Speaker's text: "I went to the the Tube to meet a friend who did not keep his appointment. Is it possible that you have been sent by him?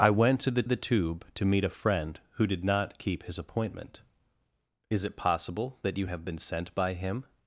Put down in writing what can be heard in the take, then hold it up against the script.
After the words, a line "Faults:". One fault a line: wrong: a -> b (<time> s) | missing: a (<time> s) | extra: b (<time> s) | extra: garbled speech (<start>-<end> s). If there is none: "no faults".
"I went to the the Tube to meet a friend who did not keep his appointment. Is it possible that you have been sent by him?
Faults:
no faults